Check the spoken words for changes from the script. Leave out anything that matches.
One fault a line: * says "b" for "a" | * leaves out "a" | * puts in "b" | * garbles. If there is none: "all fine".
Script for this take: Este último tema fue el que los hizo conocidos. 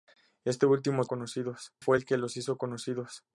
* says "conocidos" for "tema"